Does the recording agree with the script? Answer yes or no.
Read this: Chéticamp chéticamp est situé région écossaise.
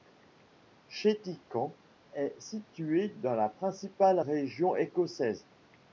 no